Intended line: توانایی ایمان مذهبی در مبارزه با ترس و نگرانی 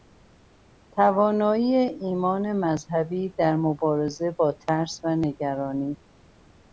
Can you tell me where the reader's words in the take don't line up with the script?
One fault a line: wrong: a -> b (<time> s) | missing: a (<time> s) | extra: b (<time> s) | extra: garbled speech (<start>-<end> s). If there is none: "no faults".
no faults